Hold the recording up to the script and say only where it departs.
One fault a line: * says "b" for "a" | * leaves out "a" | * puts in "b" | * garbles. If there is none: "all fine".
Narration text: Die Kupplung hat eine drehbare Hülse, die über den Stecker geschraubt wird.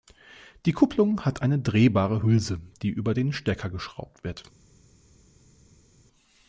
all fine